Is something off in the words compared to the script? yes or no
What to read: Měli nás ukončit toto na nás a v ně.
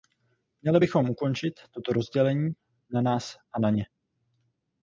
yes